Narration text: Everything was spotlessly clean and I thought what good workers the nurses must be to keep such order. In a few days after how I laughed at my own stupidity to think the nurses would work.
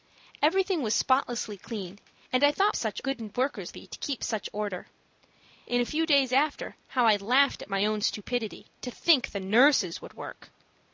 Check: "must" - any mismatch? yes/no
yes